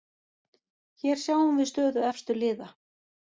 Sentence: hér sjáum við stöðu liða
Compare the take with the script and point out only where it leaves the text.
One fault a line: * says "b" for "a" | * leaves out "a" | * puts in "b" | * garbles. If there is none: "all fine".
* puts in "efstu"